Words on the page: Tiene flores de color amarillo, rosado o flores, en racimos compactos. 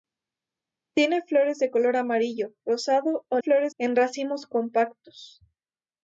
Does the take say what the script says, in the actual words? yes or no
yes